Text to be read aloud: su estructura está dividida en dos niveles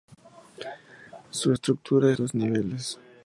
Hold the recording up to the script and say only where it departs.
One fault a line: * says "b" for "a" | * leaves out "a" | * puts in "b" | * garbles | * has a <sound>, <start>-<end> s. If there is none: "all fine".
* leaves out "está dividida en"